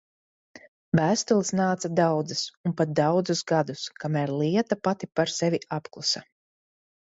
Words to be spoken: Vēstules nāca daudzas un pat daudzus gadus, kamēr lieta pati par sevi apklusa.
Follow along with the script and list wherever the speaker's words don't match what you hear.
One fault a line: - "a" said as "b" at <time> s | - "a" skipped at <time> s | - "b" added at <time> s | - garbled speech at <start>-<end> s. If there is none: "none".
none